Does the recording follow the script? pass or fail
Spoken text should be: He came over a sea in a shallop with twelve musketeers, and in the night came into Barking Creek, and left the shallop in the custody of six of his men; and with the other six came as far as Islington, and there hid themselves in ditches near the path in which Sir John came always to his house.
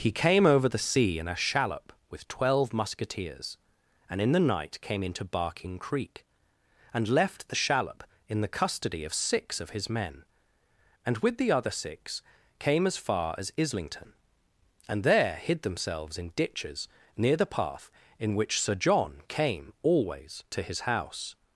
fail